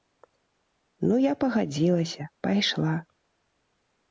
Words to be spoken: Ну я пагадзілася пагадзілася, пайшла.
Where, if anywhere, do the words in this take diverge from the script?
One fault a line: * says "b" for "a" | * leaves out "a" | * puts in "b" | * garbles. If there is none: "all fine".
* leaves out "пагадзілася"